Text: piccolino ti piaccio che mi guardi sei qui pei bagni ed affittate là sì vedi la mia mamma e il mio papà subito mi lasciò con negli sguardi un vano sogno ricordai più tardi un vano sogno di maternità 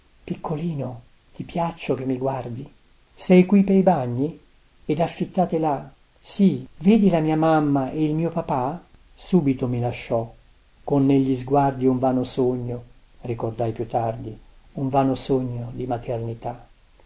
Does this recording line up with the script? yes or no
yes